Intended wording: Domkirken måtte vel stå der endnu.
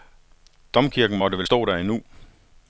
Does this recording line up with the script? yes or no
yes